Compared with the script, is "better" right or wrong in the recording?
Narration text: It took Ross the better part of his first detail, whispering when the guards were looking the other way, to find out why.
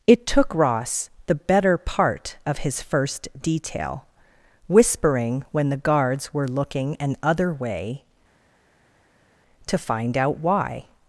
right